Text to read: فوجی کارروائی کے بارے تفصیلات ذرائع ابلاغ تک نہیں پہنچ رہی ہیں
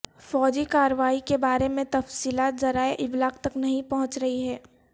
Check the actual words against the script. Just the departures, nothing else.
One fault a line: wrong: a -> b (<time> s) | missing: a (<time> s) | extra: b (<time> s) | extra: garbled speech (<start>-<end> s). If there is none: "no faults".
extra: میں (1.7 s)